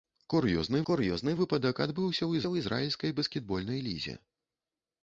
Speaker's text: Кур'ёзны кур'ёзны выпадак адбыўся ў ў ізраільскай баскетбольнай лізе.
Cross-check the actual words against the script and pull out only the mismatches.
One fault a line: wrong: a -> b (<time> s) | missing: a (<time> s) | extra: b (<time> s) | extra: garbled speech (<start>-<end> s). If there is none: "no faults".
no faults